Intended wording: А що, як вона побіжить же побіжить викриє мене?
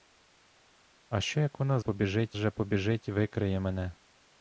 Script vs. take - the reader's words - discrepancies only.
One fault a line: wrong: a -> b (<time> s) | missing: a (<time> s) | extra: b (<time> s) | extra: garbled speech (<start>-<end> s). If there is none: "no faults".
no faults